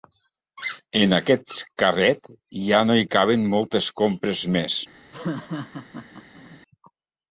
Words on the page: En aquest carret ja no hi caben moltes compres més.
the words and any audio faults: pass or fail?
fail